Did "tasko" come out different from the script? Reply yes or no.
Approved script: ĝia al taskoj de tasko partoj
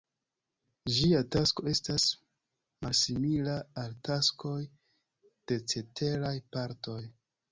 yes